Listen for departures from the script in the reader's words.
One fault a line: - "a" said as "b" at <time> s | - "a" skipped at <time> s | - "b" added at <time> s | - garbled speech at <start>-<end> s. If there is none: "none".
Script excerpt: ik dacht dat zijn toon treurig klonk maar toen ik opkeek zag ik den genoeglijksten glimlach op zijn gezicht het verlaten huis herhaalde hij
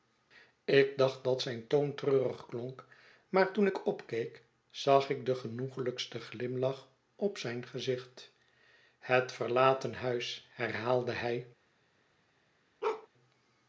none